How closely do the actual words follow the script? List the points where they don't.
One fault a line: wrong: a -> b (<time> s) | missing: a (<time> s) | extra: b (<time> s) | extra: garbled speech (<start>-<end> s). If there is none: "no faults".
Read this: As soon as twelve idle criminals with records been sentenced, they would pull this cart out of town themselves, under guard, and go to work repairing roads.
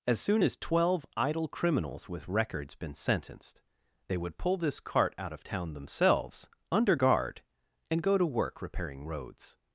no faults